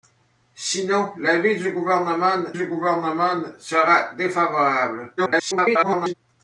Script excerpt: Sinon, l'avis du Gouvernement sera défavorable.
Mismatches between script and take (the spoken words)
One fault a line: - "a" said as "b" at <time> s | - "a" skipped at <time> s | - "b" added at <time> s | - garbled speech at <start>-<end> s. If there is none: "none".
- "du Gouvernement" added at 2.5 s
- garbled speech at 5.2-6.1 s